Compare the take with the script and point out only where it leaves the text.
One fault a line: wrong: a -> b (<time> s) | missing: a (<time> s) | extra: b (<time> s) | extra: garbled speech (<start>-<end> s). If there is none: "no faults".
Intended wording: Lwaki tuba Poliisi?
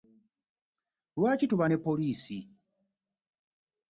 extra: ne (1.7 s)